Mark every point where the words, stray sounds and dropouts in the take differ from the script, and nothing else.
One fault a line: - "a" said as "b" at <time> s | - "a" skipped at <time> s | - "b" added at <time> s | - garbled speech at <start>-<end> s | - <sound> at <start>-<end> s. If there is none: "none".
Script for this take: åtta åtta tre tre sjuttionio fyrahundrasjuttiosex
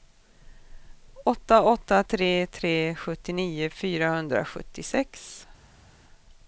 none